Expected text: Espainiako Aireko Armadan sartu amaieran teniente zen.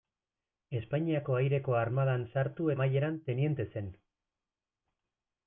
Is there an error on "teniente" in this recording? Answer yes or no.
no